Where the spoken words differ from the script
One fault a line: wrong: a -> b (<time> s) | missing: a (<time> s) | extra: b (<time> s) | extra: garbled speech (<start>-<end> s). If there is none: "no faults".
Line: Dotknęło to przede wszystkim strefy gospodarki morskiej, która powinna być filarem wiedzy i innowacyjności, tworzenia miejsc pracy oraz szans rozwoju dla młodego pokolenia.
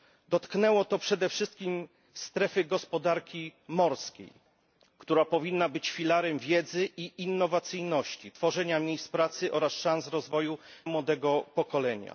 missing: dla (10.6 s)